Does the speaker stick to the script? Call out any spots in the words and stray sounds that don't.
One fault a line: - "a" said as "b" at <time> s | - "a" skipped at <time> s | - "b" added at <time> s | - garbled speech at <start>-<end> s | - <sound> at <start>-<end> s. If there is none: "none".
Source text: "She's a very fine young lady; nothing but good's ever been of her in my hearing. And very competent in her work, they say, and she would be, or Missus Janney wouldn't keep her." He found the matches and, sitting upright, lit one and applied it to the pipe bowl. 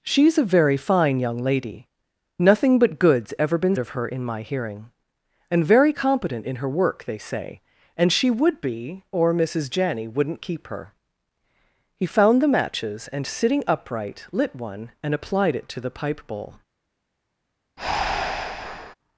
- breath at 17.8-18.9 s